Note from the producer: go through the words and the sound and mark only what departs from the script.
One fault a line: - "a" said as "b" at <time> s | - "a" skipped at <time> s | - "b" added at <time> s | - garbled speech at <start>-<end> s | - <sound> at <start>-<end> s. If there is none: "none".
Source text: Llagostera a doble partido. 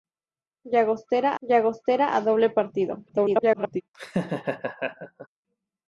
- "llagostera" added at 1.4 s
- garbled speech at 3.1-3.8 s
- laugh at 3.9-5.3 s